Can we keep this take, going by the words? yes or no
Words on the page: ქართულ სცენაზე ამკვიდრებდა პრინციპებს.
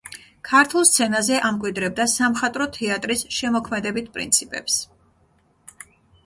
no